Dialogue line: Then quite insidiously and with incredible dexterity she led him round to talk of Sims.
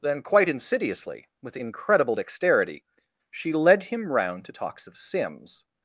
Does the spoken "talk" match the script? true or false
false